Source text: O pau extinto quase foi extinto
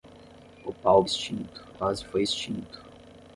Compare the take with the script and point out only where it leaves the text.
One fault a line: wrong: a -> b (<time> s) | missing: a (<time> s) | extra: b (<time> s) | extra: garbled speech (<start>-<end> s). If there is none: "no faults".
no faults